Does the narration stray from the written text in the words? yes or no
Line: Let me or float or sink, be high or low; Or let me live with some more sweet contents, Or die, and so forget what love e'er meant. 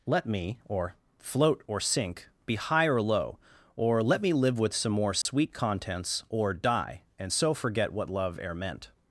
no